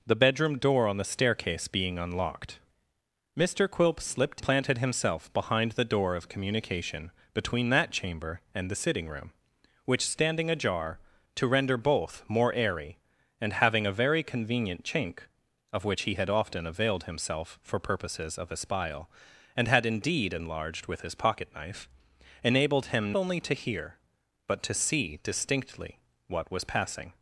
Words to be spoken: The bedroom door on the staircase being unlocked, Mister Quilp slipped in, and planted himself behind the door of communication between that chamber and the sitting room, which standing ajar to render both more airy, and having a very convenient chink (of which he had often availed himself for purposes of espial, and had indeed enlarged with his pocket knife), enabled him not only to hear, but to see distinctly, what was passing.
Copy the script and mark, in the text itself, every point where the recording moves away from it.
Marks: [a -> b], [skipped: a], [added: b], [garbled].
The bedroom door on the staircase being unlocked, Mister Quilp slipped [skipped: in, and] planted himself behind the door of communication between that chamber and the sitting room, which standing ajar to render both more airy, and having a very convenient chink (of which he had often availed himself for purposes of espial, and had indeed enlarged with his pocket knife), enabled him [skipped: not] only to hear, but to see distinctly, what was passing.